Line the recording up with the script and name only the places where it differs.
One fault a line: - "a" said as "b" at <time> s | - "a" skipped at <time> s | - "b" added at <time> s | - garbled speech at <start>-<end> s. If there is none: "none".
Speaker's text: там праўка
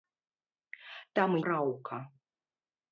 none